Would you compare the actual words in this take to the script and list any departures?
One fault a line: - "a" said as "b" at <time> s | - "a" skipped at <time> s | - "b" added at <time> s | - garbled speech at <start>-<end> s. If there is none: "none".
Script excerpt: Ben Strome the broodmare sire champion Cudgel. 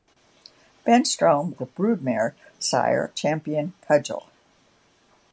none